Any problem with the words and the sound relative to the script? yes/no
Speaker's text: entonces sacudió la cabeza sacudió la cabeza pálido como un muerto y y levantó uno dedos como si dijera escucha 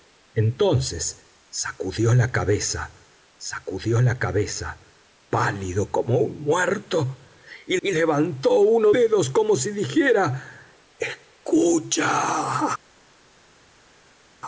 no